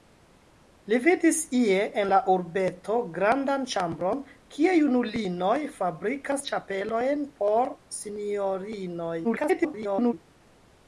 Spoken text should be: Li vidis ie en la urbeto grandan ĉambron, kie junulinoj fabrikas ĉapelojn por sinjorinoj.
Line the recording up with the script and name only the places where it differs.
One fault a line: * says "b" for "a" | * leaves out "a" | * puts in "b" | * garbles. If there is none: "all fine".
* garbles